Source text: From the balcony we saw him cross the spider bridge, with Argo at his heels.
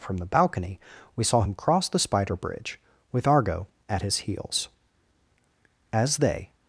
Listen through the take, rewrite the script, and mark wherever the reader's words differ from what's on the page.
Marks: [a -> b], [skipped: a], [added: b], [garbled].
From the balcony we saw him cross the spider bridge, with Argo at his heels. [added: As they]